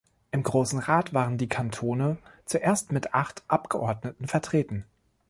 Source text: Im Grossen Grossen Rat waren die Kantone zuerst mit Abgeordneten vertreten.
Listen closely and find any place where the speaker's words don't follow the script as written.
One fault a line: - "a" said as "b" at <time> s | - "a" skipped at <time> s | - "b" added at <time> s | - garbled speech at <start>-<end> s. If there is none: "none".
- "Grossen" skipped at 0.8 s
- "acht" added at 3.1 s